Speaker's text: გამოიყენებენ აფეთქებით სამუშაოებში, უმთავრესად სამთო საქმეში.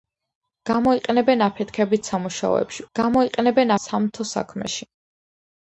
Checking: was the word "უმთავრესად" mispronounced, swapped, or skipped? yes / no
yes